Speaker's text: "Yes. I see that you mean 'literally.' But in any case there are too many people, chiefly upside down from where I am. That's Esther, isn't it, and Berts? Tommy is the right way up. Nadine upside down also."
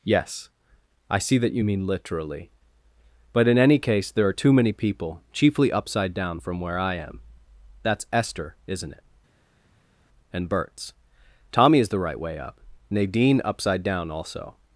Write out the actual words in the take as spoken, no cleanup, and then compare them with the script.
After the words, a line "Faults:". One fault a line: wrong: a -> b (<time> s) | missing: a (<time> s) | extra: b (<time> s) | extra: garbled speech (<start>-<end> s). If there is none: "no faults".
"Yes. I see that you mean 'literally.' But in any case there are too many people, chiefly upside down from where I am. That's Esther, isn't it, and Berts? Tommy is the right way up. Nadine upside down also."
Faults:
no faults